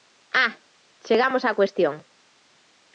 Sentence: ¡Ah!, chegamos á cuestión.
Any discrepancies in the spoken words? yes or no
no